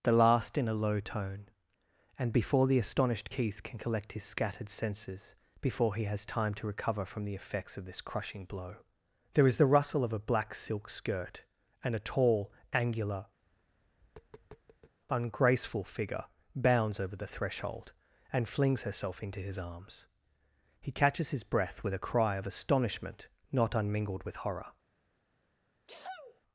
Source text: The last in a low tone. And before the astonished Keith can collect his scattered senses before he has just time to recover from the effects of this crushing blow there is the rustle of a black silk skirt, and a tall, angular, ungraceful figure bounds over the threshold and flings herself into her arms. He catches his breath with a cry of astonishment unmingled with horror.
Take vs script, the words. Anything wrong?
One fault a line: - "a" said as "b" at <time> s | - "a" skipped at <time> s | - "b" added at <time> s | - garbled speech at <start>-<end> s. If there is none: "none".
- "just" skipped at 6.3 s
- "her" said as "his" at 19.4 s
- "not" added at 23.5 s